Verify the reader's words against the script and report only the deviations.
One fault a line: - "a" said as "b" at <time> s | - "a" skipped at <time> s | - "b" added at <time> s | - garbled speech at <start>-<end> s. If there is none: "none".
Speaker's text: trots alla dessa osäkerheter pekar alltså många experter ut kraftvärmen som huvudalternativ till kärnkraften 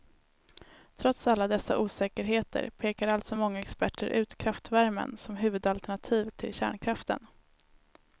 none